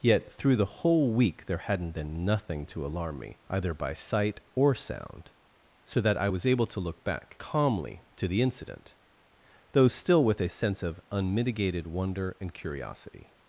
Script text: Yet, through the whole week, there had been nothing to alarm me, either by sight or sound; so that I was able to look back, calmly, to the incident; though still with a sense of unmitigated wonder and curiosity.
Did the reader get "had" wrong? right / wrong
wrong